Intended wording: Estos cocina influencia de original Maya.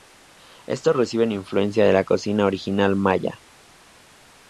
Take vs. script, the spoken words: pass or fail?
fail